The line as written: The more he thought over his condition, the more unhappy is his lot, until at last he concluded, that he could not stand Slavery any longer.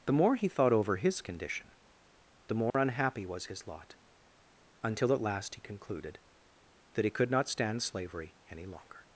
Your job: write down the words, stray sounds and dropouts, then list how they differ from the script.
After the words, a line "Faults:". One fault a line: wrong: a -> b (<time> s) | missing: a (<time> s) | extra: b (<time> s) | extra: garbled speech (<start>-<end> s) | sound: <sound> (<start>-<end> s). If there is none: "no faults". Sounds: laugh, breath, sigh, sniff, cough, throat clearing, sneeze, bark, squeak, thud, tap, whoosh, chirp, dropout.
The more he thought over his condition, the more unhappy was his lot, until at last he concluded, that he could not stand Slavery any longer.
Faults:
sound: dropout (2.7-2.7 s)
wrong: is -> was (3.2 s)